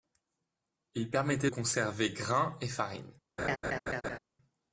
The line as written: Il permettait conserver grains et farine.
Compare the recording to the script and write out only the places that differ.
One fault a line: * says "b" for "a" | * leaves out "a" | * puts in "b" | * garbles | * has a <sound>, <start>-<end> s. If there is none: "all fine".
* has a laugh, 3.4-4.2 s